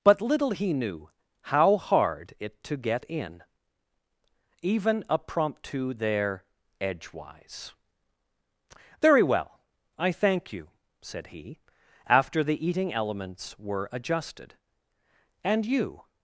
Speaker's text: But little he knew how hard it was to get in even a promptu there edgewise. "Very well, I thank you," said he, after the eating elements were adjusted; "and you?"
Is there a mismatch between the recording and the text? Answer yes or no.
yes